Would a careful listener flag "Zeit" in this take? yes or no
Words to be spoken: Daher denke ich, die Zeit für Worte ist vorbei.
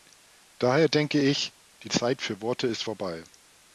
no